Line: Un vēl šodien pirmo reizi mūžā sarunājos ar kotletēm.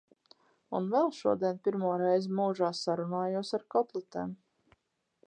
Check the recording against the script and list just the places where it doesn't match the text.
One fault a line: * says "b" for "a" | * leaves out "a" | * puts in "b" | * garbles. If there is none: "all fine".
all fine